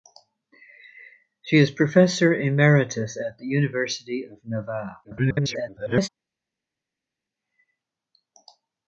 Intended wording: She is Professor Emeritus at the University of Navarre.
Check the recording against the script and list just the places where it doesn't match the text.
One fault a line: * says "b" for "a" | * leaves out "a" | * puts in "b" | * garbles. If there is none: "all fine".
* garbles